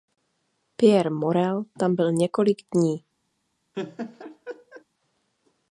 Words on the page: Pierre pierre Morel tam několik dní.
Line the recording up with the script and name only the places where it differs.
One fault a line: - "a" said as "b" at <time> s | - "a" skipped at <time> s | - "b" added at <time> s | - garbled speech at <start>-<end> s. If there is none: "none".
- "pierre" skipped at 1.1 s
- "byl" added at 1.9 s